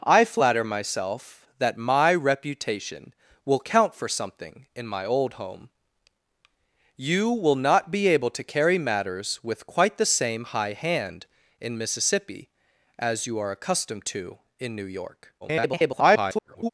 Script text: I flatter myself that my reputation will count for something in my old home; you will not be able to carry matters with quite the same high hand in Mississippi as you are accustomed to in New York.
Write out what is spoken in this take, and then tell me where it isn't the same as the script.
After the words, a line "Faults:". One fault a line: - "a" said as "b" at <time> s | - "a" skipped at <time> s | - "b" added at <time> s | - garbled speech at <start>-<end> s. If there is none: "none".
I flatter myself that my reputation will count for something in my old home; you will not be able to carry matters with quite the same high hand in Mississippi as you are accustomed to in New York. [garbled]
Faults:
- garbled speech at 15.4-16.7 s